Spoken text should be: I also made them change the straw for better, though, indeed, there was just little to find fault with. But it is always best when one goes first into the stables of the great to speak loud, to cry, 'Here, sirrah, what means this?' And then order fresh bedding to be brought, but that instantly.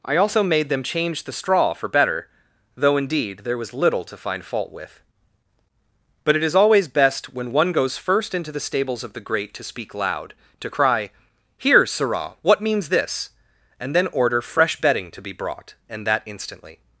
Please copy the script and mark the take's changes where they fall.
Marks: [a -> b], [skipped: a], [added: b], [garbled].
I also made them change the straw for better, though, indeed, there was [skipped: just] little to find fault with. But it is always best when one goes first into the stables of the great to speak loud, to cry, 'Here, sirrah, what means this?' And then order fresh bedding to be brought, [but -> and] that instantly.